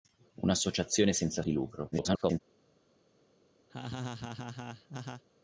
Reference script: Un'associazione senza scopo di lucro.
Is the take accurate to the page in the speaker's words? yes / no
no